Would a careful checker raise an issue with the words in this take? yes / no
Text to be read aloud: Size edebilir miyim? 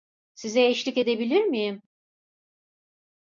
yes